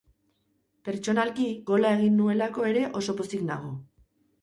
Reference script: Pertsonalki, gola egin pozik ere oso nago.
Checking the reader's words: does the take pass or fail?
fail